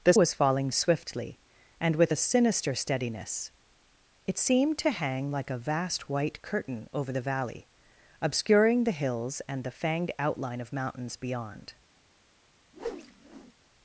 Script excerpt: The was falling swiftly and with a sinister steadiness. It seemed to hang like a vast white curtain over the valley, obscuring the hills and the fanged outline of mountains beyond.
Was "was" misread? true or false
false